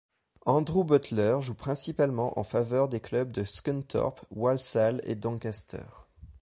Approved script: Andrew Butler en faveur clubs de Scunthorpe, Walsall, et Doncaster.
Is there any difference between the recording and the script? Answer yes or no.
yes